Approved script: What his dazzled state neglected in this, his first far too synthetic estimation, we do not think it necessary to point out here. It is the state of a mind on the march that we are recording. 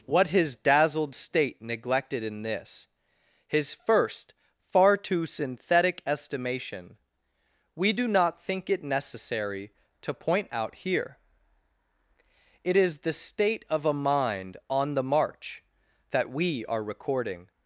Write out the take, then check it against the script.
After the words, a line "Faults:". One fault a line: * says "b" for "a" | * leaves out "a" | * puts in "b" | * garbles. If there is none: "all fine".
What his dazzled state neglected in this, his first far too synthetic estimation, we do not think it necessary to point out here. It is the state of a mind on the march that we are recording.
Faults:
all fine